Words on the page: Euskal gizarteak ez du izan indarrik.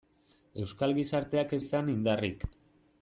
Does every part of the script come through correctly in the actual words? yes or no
no